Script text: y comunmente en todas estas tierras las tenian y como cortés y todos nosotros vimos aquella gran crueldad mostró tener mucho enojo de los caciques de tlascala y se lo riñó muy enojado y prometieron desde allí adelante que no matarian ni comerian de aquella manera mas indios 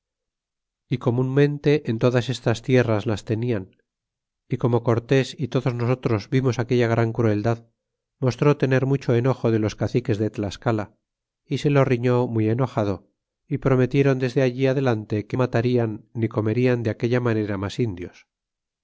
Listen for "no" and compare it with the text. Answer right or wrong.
wrong